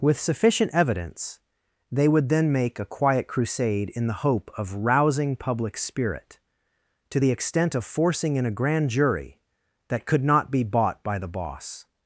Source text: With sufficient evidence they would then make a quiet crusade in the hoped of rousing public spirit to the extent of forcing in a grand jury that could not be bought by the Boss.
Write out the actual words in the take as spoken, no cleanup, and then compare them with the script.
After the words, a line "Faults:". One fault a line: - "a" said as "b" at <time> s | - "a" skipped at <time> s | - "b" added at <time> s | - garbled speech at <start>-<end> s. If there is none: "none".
With sufficient evidence they would then make a quiet crusade in the hope of rousing public spirit to the extent of forcing in a grand jury that could not be bought by the Boss.
Faults:
- "hoped" said as "hope" at 4.2 s